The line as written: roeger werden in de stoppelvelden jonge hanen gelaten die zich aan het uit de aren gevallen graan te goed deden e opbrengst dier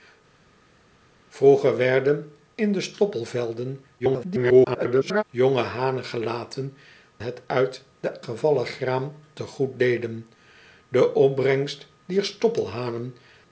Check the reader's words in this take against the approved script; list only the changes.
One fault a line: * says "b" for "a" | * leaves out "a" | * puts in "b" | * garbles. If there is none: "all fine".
* garbles
* leaves out "die zich aan"
* leaves out "aren"